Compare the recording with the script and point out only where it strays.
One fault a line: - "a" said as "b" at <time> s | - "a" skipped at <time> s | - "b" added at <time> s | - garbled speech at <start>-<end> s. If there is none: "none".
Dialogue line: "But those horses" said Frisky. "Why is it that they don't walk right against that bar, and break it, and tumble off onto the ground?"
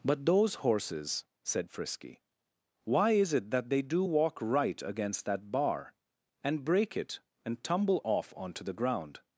- "don't" said as "do" at 3.8 s